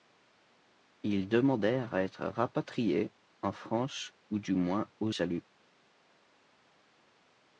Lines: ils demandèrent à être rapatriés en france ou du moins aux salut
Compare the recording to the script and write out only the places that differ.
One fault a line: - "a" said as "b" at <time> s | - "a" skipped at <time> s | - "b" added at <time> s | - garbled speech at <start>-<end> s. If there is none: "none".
none